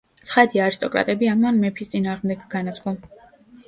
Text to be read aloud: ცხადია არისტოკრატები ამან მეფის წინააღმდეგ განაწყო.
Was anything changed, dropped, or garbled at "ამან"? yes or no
no